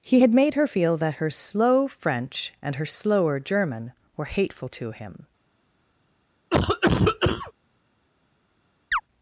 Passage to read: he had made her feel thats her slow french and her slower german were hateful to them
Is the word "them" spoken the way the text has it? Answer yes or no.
no